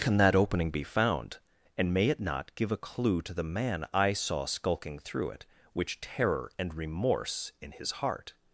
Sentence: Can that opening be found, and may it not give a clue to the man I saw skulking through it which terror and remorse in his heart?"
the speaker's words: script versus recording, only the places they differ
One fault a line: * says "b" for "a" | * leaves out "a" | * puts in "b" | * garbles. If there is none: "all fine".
all fine